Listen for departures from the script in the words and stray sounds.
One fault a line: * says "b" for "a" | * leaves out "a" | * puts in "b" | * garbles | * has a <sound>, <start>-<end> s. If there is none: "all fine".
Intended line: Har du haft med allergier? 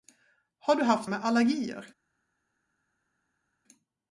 all fine